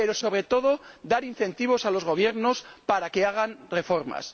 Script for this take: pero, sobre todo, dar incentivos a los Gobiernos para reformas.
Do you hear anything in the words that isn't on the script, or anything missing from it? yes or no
yes